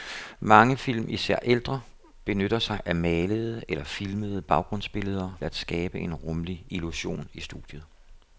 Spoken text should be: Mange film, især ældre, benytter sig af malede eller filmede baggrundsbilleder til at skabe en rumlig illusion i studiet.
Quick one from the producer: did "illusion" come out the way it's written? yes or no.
yes